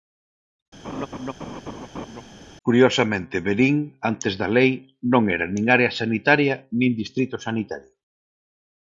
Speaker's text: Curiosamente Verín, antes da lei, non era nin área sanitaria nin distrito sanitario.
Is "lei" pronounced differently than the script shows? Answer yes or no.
no